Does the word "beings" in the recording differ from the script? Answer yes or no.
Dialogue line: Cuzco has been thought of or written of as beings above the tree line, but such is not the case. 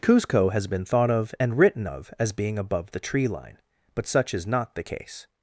yes